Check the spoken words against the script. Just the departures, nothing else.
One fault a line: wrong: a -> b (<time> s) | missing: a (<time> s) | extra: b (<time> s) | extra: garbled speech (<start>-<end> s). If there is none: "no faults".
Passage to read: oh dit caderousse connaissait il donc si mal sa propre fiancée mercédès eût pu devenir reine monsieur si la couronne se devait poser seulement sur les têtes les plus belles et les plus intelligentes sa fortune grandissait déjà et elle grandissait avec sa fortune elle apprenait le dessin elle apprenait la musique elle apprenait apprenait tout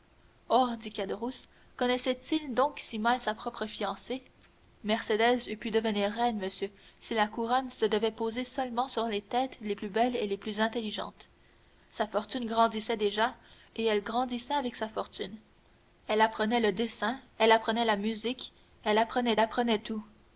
no faults